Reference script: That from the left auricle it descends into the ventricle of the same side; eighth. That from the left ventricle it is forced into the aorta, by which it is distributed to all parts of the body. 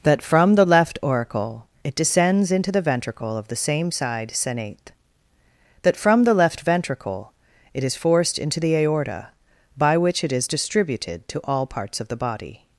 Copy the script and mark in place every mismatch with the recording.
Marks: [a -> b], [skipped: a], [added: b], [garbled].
That from the left auricle it descends into the ventricle of the same side; [eighth. -> senate] That from the left ventricle it is forced into the aorta, by which it is distributed to all parts of the body.